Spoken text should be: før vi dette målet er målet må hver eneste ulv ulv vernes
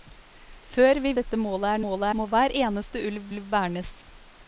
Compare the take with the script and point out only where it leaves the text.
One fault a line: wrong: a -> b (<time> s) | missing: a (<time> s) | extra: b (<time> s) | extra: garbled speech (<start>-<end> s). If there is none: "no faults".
no faults